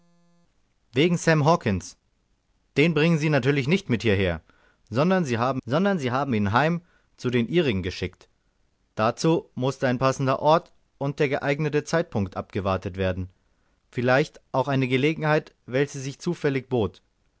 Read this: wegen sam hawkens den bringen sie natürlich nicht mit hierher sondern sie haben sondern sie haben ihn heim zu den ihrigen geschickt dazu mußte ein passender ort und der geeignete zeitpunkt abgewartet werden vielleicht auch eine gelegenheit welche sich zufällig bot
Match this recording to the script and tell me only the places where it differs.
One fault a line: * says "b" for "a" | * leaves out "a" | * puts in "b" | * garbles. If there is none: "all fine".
all fine